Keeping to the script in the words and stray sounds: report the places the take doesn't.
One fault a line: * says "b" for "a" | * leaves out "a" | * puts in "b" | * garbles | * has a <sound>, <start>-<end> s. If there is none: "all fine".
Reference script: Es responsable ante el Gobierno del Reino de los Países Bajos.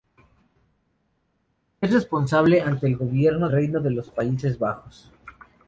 * leaves out "del"